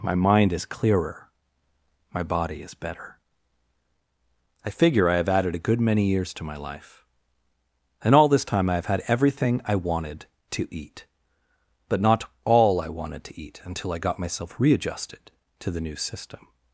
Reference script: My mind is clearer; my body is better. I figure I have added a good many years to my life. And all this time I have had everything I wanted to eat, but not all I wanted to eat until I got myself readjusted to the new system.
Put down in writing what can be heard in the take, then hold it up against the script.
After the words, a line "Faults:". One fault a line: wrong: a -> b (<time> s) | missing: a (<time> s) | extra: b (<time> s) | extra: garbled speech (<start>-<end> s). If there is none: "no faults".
My mind is clearer; my body is better. I figure I have added a good many years to my life. And all this time I have had everything I wanted to eat, but not all I wanted to eat until I got myself readjusted to the new system.
Faults:
no faults